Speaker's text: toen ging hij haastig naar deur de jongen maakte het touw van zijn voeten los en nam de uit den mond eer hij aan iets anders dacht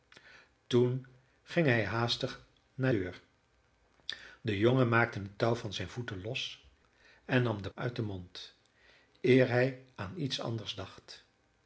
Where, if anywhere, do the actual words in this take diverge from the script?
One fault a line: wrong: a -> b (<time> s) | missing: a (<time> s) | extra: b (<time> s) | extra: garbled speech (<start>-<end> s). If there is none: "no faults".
no faults